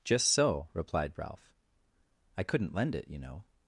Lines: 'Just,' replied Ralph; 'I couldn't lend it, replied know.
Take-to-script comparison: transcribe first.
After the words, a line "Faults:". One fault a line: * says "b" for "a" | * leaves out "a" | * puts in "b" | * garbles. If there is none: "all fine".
'Just so,' replied Ralph; 'I couldn't lend it, you know.
Faults:
* puts in "so"
* says "you" for "replied"